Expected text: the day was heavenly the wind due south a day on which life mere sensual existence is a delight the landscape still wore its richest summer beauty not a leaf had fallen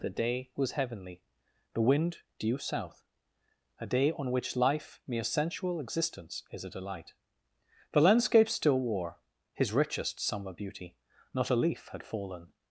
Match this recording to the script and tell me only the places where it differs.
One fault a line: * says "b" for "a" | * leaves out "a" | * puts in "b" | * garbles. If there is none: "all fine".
* says "his" for "its"